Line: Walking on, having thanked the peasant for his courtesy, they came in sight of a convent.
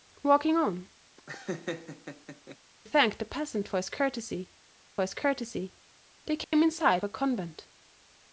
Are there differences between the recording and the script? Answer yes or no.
yes